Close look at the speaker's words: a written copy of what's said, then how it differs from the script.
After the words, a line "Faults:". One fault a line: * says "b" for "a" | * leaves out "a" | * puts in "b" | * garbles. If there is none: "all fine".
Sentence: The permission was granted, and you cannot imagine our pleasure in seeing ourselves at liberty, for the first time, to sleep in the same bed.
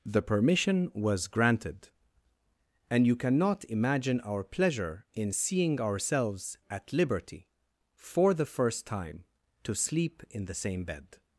The permission was granted, and you cannot imagine our pleasure in seeing ourselves at liberty, for the first time, to sleep in the same bed.
Faults:
all fine